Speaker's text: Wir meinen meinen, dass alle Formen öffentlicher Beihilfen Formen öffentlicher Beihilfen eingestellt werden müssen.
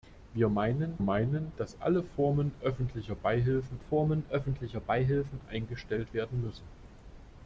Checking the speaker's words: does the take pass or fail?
pass